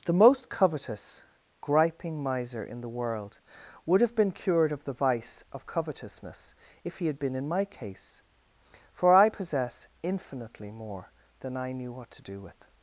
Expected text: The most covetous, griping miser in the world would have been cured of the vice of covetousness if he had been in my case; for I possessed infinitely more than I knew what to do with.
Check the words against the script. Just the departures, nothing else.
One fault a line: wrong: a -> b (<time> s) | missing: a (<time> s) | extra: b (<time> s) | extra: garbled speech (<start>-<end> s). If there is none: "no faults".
wrong: possessed -> possess (9.3 s)